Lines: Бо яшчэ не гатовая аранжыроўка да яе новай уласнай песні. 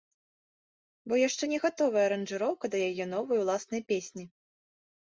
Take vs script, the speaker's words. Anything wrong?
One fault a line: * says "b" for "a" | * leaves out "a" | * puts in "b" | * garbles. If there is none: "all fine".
all fine